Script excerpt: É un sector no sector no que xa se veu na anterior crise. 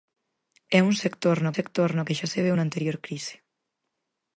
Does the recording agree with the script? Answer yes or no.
yes